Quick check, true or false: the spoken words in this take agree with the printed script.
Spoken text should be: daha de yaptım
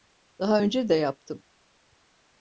false